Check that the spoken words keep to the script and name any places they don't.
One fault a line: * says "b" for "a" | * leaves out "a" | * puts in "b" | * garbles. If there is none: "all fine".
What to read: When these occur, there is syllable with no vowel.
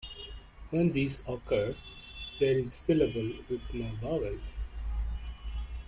all fine